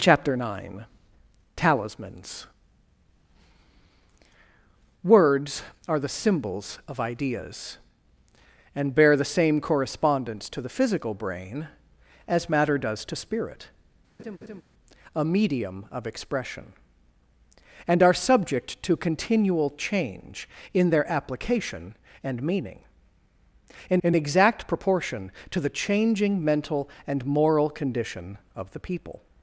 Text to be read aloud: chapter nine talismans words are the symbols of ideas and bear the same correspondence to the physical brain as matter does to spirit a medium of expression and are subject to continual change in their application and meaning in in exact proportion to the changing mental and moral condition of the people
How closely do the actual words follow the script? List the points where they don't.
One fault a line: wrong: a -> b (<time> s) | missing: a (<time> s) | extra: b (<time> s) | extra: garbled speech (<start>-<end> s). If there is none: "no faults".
no faults